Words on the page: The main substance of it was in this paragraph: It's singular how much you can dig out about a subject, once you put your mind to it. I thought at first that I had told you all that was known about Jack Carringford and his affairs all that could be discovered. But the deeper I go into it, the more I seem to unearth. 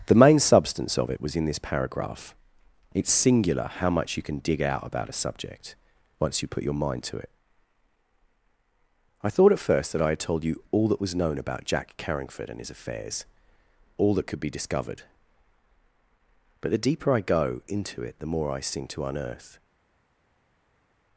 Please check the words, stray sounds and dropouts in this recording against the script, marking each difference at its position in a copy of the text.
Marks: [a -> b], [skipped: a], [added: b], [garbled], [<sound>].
The main substance of it was in this paragraph: It's singular how much you can dig out about a subject, once you put your mind to it. I thought at first that I had told you all that was known about Jack Carringford and his affairs all that could be discovered. But the deeper I go into it, the more I seem to unearth.